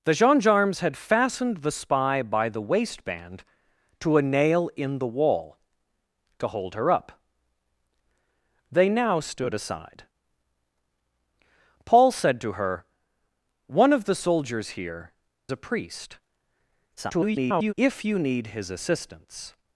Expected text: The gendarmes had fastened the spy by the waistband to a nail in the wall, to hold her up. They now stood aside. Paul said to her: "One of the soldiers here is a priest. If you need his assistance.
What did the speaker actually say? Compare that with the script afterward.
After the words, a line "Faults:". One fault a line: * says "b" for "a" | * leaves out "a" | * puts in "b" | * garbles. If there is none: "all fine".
The gendarmes had fastened the spy by the waistband to a nail in the wall, to hold her up. They now stood aside. Paul said to her: "One of the soldiers here a priest. [garbled] If you need his assistance.
Faults:
* leaves out "is"
* garbles